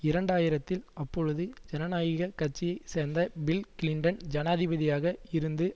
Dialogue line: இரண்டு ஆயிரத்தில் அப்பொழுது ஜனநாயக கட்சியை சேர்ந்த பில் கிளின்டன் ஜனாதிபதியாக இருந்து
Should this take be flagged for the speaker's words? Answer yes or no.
no